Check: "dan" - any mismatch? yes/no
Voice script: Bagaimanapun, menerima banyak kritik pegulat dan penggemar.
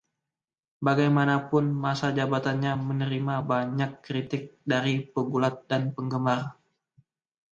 no